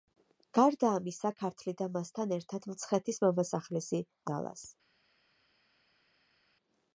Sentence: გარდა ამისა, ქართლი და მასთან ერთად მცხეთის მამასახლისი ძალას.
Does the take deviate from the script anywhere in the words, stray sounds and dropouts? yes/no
no